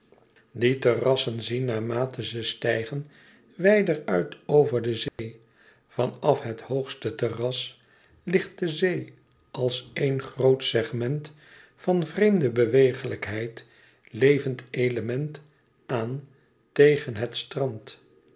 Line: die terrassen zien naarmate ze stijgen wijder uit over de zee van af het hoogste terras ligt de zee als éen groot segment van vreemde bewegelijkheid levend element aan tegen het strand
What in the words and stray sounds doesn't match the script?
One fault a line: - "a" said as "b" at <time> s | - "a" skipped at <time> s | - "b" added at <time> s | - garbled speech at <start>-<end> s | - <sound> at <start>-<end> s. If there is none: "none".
- dropout at 5.1-5.2 s